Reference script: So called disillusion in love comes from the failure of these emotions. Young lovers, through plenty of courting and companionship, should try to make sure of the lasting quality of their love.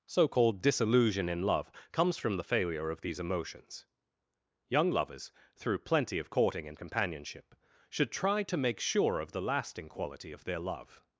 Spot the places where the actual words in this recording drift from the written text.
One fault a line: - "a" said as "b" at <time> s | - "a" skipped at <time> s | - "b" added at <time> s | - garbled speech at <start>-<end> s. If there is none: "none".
none